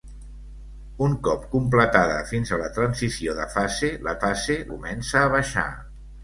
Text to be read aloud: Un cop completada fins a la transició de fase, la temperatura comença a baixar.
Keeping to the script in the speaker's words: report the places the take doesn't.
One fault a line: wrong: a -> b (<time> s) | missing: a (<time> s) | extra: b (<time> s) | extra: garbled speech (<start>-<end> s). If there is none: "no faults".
wrong: temperatura -> fase (4.3 s)